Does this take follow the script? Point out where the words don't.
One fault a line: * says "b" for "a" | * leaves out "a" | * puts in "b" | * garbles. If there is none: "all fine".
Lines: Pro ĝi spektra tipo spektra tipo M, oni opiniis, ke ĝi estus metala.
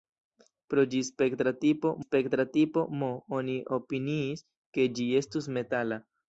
all fine